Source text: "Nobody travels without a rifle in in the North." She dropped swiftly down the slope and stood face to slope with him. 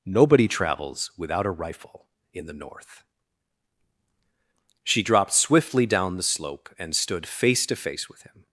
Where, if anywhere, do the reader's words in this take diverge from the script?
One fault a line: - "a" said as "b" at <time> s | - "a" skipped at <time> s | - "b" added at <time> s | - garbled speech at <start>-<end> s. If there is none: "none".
- "in" skipped at 2.4 s
- "slope" said as "face" at 7.7 s